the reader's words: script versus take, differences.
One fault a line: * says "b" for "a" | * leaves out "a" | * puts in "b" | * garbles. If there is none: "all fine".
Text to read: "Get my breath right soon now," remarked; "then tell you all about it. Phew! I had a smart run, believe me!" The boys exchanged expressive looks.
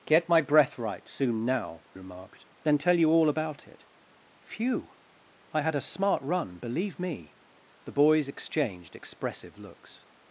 all fine